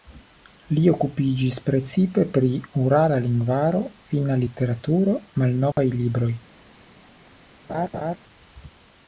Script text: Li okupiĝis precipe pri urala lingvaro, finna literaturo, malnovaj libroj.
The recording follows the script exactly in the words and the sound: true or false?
false